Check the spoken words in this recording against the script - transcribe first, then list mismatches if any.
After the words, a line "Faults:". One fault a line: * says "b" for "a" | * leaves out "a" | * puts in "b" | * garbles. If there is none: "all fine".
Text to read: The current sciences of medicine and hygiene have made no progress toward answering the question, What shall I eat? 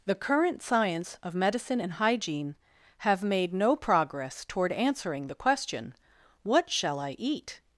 The current science of medicine and hygiene have made no progress toward answering the question, What shall I eat?
Faults:
* says "science" for "sciences"